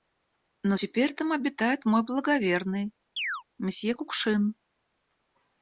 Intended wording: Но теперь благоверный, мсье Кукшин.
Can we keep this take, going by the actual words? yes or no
no